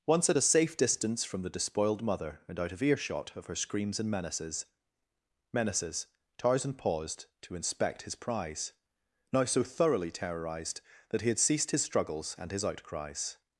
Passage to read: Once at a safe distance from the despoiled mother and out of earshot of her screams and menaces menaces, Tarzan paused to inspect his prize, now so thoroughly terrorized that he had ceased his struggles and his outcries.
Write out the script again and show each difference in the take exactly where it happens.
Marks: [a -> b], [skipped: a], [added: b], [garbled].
Once at a safe distance from the despoiled mother and out of earshot of her screams and menaces menaces, Tarzan paused to inspect his prize, now so thoroughly terrorized that he had ceased his struggles and his outcries.